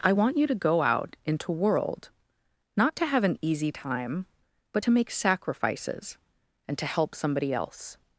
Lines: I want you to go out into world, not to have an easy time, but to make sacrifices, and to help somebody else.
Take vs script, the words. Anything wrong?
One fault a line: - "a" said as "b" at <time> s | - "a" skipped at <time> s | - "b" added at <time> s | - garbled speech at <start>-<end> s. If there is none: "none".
none